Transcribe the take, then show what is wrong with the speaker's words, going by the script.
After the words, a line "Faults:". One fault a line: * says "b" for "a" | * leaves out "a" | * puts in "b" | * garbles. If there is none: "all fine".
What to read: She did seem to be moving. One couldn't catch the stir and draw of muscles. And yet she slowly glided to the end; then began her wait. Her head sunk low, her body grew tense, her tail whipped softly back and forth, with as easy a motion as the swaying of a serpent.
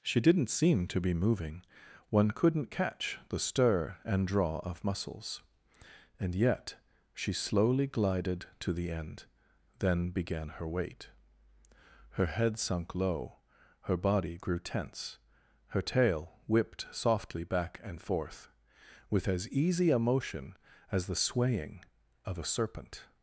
She didn't seem to be moving. One couldn't catch the stir and draw of muscles. And yet she slowly glided to the end; then began her wait. Her head sunk low, her body grew tense, her tail whipped softly back and forth, with as easy a motion as the swaying of a serpent.
Faults:
* says "didn't" for "did"